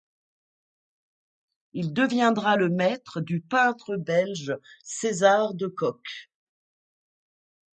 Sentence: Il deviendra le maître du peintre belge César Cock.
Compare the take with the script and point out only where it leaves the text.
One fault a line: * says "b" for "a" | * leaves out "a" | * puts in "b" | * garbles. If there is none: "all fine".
* puts in "de"